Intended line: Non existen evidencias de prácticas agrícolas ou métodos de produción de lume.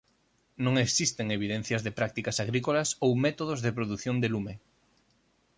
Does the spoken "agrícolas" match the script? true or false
true